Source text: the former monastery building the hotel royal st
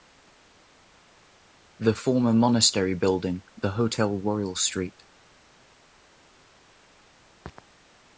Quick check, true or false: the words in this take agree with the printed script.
true